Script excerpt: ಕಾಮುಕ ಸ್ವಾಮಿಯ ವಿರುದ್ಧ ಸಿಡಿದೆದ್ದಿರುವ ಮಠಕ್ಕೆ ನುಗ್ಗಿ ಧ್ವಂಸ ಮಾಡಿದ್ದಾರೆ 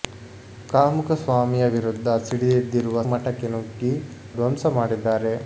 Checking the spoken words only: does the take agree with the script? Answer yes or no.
yes